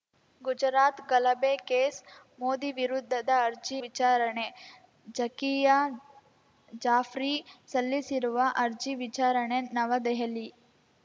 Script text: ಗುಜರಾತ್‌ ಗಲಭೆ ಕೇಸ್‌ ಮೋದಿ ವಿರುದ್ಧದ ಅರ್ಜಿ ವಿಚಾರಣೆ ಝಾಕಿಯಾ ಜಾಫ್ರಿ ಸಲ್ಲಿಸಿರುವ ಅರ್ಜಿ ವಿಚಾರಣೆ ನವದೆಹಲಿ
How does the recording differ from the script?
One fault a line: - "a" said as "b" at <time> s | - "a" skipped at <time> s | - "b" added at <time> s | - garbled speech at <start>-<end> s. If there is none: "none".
none